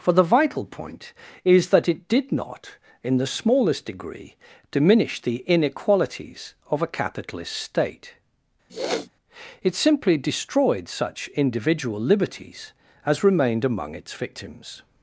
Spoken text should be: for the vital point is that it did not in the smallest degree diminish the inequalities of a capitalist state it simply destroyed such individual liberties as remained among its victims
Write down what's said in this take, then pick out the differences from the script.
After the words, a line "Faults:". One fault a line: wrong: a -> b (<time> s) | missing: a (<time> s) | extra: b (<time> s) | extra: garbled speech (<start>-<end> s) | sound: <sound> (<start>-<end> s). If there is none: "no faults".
for the vital point is that it did not in the smallest degree diminish the inequalities of a capitalist state it simply destroyed such individual liberties as remained among its victims
Faults:
sound: sniff (8.7-9.1 s)